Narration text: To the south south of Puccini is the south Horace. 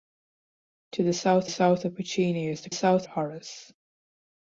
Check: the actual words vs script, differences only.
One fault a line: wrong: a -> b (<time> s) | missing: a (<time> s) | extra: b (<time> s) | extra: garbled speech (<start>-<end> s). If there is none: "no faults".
no faults